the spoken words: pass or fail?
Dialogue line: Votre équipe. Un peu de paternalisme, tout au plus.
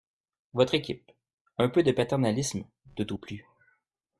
pass